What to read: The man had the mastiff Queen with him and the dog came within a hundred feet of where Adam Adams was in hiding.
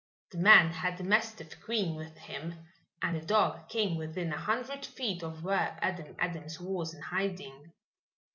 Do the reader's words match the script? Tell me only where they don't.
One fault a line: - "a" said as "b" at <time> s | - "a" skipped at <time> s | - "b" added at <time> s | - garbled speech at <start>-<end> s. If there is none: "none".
none